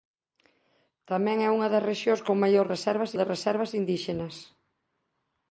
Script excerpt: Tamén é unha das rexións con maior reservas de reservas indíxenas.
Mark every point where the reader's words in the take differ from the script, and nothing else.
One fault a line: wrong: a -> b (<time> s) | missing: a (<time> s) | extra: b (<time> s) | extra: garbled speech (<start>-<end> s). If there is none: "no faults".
no faults